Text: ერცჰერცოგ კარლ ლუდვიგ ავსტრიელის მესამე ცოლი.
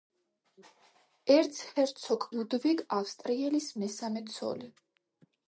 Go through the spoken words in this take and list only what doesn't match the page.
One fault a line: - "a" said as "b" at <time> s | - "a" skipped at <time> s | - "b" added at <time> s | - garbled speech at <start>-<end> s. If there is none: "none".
- "კარლ" skipped at 2.3 s